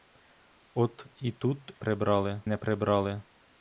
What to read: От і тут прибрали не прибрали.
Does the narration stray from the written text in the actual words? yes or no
no